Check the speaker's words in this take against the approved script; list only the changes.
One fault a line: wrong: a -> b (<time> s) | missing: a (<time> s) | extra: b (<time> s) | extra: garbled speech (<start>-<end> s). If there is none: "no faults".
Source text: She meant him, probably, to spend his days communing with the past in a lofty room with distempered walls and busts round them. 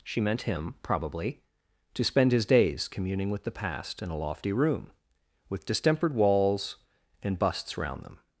no faults